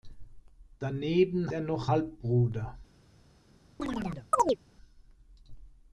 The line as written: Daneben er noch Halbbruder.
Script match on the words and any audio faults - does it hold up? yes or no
no